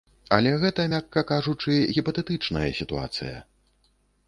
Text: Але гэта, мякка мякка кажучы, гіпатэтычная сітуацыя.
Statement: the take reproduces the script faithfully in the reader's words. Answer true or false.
false